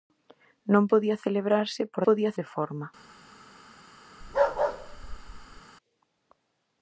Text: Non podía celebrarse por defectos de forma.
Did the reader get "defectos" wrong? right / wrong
wrong